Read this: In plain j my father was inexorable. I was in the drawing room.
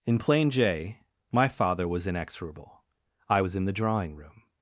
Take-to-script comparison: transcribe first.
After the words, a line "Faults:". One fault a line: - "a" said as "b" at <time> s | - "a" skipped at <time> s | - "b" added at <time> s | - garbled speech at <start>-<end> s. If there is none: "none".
In plain j my father was inexorable. I was in the drawing room.
Faults:
none